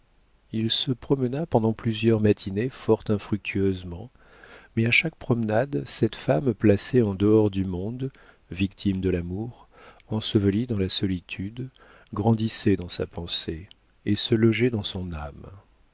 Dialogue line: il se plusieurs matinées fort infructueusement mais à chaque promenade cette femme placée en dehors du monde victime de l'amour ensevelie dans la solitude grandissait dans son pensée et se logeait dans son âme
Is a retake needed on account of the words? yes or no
yes